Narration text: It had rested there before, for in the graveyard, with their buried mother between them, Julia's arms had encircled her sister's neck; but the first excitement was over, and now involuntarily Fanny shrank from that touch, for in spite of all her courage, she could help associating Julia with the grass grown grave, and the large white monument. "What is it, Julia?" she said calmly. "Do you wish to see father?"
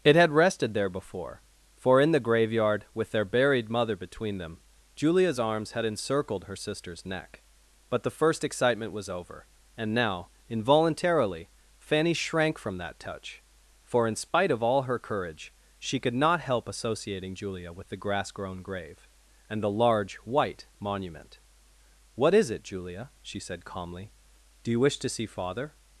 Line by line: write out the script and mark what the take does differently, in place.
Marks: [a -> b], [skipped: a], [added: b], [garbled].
It had rested there before, for in the graveyard, with their buried mother between them, Julia's arms had encircled her sister's neck; but the first excitement was over, and now involuntarily Fanny shrank from that touch, for in spite of all her courage, she could [added: not] help associating Julia with the grass grown grave, and the large white monument. "What is it, Julia?" she said calmly. "Do you wish to see father?"